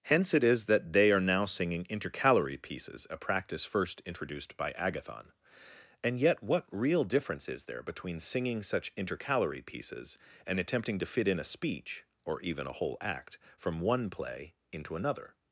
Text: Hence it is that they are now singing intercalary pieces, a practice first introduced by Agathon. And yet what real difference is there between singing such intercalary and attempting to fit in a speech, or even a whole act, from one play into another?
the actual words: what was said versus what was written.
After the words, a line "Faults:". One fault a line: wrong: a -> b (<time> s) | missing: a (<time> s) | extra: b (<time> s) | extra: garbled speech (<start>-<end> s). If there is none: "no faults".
Hence it is that they are now singing intercalary pieces, a practice first introduced by Agathon. And yet what real difference is there between singing such intercalary pieces, and attempting to fit in a speech, or even a whole act, from one play into another?
Faults:
extra: pieces (9.6 s)